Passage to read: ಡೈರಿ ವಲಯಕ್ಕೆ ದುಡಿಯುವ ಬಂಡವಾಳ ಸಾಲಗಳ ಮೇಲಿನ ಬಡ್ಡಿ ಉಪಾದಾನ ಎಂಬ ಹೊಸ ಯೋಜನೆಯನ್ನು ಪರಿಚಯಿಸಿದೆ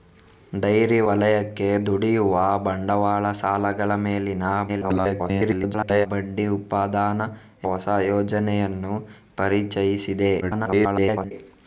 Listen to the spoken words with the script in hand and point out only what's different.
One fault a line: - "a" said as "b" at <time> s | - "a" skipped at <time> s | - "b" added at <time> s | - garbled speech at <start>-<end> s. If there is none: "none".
- garbled speech at 4.7-6.1 s
- "ಎಂಬ" skipped at 7.3 s
- garbled speech at 10.4-11.3 s